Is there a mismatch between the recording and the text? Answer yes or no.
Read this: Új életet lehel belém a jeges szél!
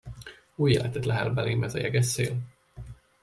yes